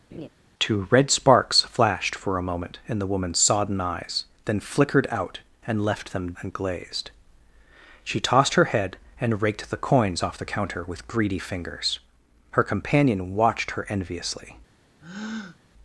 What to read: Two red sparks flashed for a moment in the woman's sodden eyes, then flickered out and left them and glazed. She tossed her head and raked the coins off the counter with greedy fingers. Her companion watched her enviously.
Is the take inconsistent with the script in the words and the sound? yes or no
yes